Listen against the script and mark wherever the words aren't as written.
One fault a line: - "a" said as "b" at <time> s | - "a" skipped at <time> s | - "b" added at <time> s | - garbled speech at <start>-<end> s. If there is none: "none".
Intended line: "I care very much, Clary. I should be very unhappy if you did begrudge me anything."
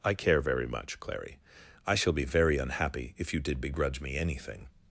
- "should" said as "shall" at 1.9 s